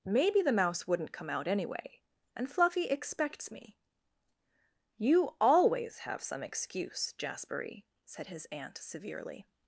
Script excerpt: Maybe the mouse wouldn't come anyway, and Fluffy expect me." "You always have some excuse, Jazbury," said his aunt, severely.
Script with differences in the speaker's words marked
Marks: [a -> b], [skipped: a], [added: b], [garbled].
Maybe the mouse wouldn't come [added: out] anyway, and Fluffy [expect -> expects] me." "You always have some excuse, Jazbury," said his aunt, severely.